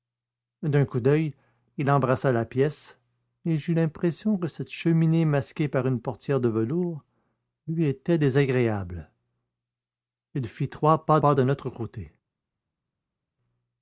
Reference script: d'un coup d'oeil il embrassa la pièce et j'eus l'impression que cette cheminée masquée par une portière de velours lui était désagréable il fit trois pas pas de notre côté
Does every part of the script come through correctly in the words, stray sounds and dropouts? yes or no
yes